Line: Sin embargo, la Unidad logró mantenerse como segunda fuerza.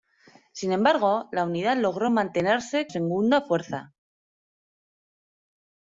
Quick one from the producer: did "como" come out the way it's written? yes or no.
no